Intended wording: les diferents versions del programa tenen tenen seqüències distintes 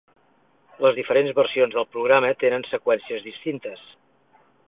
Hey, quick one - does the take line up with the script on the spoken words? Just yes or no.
no